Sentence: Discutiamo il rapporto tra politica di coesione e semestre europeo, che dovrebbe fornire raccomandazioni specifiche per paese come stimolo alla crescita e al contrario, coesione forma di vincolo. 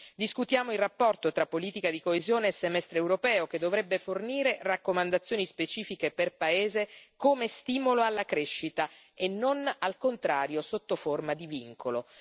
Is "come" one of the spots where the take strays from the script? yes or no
no